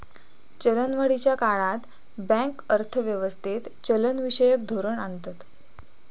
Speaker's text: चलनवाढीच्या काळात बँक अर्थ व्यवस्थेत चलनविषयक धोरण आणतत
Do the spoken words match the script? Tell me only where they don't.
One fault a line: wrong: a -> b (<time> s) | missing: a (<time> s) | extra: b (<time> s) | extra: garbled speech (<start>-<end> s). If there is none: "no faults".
no faults